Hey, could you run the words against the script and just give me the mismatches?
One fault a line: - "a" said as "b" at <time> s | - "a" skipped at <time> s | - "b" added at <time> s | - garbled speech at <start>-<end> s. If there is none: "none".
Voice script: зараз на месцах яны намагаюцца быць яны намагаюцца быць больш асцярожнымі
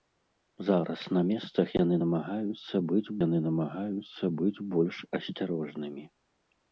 none